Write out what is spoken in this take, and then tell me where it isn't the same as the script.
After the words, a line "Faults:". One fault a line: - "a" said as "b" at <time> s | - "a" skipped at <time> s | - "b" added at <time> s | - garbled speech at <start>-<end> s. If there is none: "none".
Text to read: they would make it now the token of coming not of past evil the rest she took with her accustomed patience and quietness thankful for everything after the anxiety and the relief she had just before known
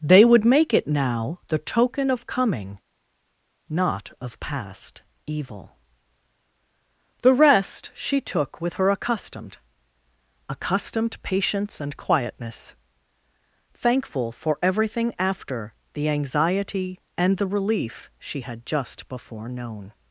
they would make it now the token of coming not of past evil the rest she took with her accustomed accustomed patience and quietness thankful for everything after the anxiety and the relief she had just before known
Faults:
- "accustomed" added at 10.5 s